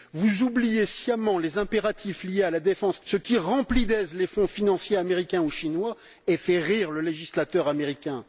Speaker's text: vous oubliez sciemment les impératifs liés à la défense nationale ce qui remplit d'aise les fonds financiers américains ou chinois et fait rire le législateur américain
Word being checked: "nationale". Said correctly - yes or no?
no